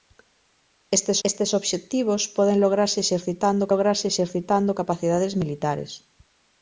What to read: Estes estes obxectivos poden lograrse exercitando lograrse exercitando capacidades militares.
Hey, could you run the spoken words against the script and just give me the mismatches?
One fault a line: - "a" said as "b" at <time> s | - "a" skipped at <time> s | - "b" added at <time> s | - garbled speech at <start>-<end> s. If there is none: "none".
none